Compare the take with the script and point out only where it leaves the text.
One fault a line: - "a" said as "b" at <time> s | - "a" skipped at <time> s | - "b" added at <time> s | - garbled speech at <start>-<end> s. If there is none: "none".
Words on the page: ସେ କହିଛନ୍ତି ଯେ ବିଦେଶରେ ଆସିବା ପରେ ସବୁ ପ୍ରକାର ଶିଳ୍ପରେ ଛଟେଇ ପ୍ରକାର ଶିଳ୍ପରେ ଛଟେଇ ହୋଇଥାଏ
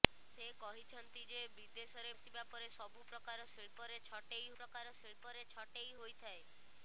none